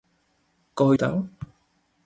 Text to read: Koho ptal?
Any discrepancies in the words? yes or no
no